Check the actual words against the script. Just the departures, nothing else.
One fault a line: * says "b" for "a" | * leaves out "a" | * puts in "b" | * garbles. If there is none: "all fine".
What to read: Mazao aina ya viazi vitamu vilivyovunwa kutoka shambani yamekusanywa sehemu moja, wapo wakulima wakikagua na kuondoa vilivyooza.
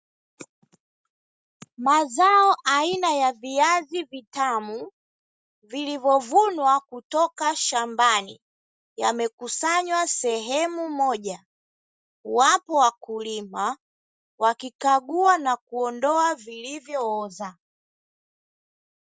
all fine